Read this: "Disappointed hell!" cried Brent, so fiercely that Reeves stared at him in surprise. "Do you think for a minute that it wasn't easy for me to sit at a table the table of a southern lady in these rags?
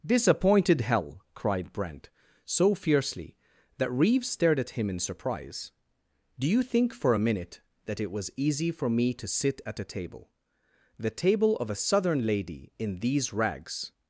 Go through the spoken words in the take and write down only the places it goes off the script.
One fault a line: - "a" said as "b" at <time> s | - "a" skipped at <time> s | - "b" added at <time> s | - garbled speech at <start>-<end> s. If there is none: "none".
- "wasn't" said as "was" at 8.1 s